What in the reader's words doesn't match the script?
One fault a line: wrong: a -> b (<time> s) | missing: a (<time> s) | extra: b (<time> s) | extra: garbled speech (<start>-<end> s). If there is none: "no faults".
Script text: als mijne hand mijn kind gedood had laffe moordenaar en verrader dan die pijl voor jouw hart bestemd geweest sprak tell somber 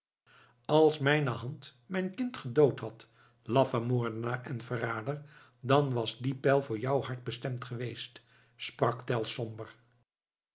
extra: was (5.9 s)